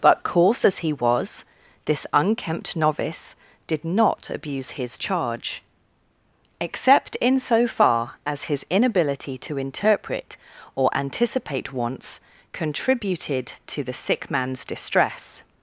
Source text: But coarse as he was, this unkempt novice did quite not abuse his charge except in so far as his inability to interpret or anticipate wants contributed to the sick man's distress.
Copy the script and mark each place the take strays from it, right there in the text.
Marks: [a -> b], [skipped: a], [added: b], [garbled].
But coarse as he was, this unkempt novice did [skipped: quite] not abuse his charge except in so far as his inability to interpret or anticipate wants contributed to the sick man's distress.